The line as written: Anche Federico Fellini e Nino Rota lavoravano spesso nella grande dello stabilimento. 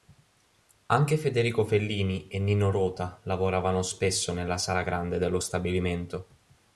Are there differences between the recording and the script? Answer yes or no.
yes